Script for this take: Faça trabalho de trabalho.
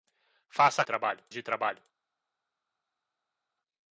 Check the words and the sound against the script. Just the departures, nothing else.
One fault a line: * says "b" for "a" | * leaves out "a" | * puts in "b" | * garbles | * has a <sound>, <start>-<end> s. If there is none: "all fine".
all fine